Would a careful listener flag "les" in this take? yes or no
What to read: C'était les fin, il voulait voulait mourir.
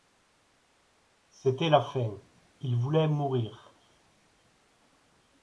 yes